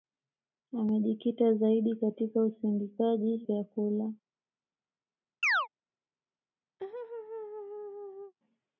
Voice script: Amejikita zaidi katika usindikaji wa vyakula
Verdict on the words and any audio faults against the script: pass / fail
fail